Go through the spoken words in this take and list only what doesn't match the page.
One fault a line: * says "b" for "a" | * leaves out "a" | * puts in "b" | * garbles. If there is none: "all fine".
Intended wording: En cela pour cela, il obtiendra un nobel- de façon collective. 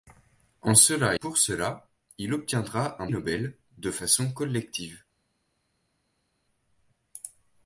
all fine